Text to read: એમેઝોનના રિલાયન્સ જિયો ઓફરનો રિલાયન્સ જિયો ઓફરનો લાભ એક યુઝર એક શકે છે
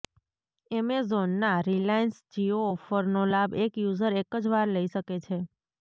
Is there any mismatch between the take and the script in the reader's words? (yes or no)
yes